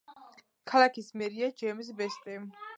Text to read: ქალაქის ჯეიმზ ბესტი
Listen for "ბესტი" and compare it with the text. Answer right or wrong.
right